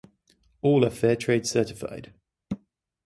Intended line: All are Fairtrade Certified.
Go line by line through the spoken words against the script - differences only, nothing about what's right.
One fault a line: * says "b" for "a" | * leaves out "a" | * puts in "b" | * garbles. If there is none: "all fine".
all fine